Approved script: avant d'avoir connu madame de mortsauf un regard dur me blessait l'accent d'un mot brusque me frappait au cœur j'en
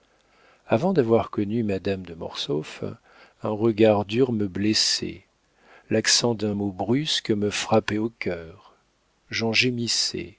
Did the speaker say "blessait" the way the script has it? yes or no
yes